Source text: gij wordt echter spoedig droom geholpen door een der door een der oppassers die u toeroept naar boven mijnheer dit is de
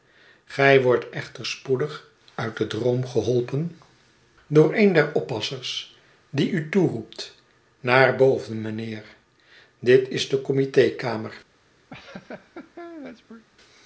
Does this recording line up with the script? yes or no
no